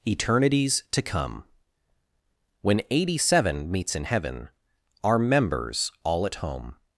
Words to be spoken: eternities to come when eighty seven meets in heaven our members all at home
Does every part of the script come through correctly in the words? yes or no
yes